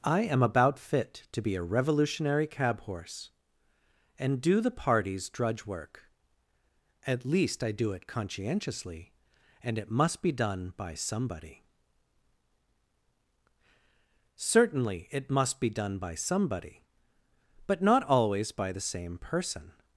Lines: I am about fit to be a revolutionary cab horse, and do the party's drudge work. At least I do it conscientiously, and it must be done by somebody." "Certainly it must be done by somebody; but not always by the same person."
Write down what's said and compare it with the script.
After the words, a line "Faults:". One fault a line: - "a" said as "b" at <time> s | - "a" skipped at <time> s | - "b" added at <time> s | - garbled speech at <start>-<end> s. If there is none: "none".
I am about fit to be a revolutionary cab horse, and do the party's drudge work. At least I do it conscientiously, and it must be done by somebody." "Certainly it must be done by somebody; but not always by the same person."
Faults:
none